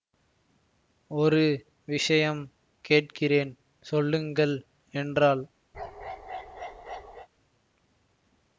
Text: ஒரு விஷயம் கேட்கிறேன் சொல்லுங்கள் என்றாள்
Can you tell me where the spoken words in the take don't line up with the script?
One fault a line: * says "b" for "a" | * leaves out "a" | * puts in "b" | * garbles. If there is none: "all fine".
all fine